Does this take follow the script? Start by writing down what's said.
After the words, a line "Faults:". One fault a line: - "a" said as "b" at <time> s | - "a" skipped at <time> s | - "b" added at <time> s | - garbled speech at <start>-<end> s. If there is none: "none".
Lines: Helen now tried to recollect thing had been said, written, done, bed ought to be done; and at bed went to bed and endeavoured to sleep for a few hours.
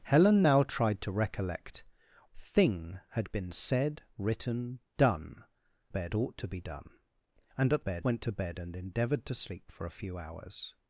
Helen now tried to recollect thing had been said, written, done, bed ought to be done; and at bed went to bed and endeavoured to sleep for a few hours.
Faults:
none